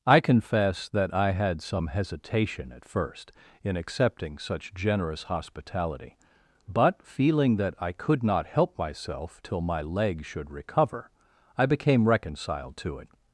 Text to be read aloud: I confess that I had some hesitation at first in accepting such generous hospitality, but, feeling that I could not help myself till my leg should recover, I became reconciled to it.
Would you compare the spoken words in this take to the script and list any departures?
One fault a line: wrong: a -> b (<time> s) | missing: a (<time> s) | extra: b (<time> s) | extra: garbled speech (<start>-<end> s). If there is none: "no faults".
no faults